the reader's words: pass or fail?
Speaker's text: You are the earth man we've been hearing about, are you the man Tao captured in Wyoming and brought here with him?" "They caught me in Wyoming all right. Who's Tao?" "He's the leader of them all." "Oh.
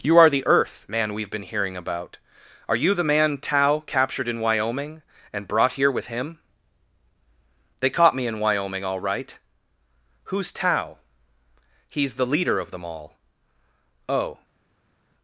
pass